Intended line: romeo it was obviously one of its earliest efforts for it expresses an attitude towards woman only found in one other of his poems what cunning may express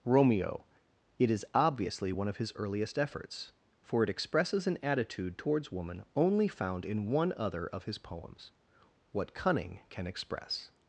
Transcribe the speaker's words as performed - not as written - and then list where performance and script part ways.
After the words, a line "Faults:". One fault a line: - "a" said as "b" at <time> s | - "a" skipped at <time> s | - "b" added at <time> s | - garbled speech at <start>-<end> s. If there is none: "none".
romeo it is obviously one of his earliest efforts for it expresses an attitude towards woman only found in one other of his poems what cunning can express
Faults:
- "was" said as "is" at 1.3 s
- "its" said as "his" at 2.4 s
- "may" said as "can" at 9.9 s